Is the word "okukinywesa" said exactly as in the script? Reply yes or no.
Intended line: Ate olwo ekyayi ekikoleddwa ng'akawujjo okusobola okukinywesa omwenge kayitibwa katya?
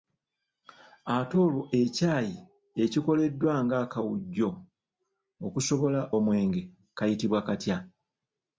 no